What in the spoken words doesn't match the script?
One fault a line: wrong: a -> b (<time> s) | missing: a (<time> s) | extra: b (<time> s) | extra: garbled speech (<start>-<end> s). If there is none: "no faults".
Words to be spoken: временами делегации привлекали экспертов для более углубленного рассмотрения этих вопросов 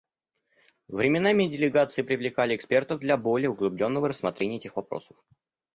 no faults